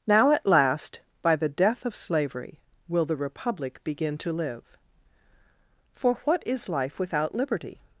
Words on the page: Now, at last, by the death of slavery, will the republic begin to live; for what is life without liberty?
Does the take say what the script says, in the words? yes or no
yes